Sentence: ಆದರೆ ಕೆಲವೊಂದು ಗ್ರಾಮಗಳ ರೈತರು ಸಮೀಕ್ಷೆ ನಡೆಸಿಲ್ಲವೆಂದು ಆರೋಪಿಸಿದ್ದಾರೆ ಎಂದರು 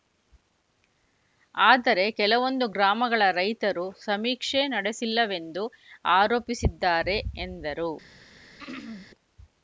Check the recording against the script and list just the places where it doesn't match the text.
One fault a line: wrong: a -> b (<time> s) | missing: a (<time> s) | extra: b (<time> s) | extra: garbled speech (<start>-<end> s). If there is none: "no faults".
no faults